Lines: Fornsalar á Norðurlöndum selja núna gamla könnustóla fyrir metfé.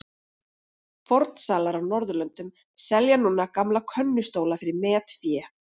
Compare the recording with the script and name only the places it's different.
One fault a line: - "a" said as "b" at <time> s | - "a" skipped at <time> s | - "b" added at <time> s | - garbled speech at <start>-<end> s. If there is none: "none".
none